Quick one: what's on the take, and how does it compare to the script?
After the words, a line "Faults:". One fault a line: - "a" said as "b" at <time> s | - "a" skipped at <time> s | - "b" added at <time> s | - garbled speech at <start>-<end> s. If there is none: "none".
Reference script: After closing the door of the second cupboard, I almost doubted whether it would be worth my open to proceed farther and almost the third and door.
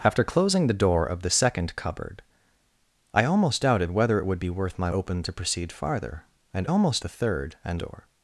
After closing the door of the second cupboard, I almost doubted whether it would be worth my open to proceed farther and almost the third and door.
Faults:
none